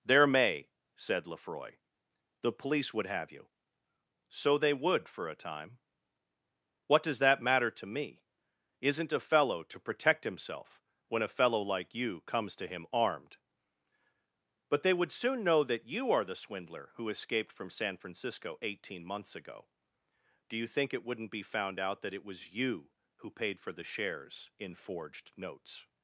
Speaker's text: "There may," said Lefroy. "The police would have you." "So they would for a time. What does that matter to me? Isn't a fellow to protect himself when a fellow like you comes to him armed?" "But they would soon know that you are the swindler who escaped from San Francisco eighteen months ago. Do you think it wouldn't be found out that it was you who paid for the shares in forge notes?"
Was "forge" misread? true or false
true